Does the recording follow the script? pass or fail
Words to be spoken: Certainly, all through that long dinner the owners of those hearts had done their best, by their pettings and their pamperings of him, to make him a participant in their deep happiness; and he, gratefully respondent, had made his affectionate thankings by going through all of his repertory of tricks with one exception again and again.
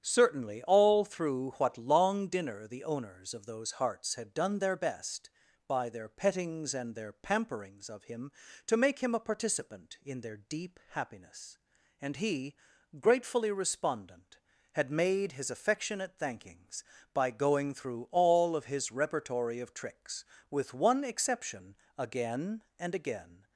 fail